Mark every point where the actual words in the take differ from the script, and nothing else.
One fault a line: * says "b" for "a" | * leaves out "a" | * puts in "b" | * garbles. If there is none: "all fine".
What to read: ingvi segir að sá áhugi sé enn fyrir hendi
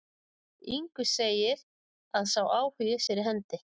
* leaves out "sé enn"